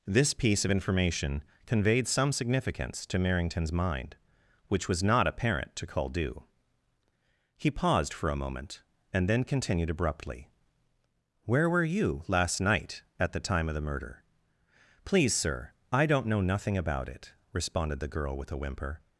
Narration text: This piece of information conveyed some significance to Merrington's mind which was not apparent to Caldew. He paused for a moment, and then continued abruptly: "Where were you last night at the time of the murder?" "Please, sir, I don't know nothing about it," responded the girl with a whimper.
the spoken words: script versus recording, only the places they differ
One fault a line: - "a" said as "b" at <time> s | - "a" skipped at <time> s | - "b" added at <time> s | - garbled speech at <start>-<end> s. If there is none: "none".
none